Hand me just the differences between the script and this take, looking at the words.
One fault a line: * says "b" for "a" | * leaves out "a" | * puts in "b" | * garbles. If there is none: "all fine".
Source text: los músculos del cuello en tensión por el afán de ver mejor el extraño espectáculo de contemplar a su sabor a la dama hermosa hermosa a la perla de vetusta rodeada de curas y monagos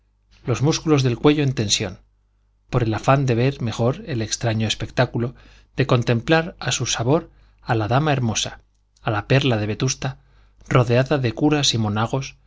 * leaves out "hermosa"